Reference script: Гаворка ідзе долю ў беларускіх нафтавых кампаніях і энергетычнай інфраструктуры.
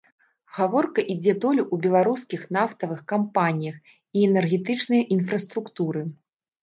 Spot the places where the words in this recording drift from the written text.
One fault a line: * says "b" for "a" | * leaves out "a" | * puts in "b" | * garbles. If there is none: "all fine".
all fine